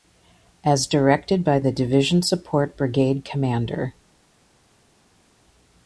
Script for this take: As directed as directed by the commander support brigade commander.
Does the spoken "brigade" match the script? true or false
true